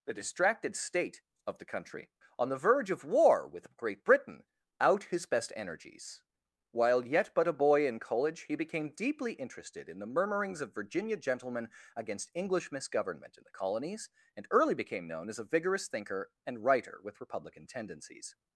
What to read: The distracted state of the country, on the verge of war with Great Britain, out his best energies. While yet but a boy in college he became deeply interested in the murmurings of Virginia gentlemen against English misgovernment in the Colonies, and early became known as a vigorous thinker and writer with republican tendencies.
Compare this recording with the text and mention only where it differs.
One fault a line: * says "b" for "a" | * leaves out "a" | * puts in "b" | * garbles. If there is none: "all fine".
all fine